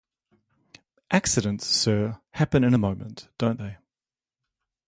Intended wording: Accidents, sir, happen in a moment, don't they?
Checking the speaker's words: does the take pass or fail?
pass